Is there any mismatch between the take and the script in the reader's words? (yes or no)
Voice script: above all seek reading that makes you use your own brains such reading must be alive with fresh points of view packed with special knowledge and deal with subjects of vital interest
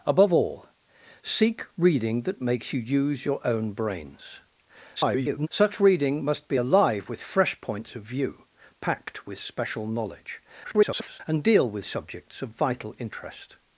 yes